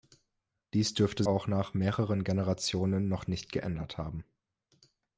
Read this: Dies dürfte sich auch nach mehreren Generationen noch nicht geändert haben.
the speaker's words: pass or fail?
fail